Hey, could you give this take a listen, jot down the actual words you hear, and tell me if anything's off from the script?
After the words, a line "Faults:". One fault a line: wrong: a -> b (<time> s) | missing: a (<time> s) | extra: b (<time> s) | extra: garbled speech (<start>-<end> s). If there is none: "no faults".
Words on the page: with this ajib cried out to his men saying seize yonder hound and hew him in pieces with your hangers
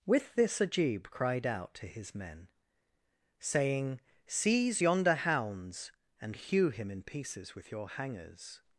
with this ajib cried out to his men saying seize yonder hounds and hew him in pieces with your hangers
Faults:
wrong: hound -> hounds (5.2 s)